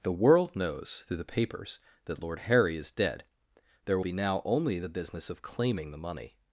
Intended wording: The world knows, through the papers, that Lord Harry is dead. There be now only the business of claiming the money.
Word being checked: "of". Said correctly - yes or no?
yes